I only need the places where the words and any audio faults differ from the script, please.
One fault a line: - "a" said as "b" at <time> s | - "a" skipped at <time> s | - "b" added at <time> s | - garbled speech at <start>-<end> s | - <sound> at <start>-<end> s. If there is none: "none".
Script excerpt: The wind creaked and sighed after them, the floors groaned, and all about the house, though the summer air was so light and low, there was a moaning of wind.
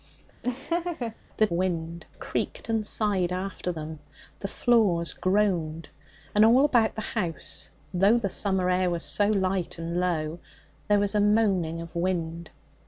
- laugh at 0.4-1.2 s